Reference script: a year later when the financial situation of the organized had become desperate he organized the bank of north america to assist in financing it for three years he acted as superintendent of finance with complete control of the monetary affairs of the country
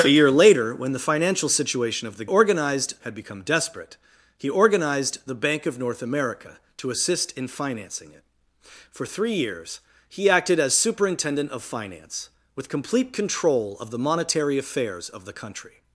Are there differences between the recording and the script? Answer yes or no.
no